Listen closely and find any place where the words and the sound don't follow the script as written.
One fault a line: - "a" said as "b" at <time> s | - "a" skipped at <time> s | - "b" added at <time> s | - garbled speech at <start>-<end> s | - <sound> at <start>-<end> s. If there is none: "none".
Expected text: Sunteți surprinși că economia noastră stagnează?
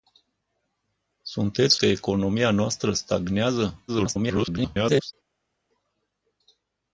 - "surprinși" skipped at 1.8 s
- garbled speech at 3.9-5.1 s